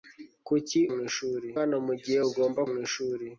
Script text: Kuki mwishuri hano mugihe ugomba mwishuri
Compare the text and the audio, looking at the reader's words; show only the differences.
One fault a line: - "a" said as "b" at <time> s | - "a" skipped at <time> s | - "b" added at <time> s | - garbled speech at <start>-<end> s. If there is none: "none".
none